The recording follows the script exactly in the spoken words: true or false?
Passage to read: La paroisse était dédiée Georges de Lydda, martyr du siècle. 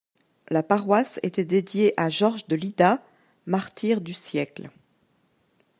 false